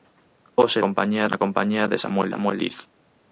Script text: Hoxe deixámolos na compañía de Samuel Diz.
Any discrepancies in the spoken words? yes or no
yes